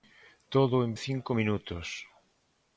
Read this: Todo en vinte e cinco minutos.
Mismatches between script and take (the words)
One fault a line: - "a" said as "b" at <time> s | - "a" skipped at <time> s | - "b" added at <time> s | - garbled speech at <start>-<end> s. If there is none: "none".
- "vinte" skipped at 0.9 s